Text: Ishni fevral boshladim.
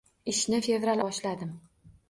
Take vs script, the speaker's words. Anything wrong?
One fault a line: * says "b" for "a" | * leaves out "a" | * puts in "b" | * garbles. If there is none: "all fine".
all fine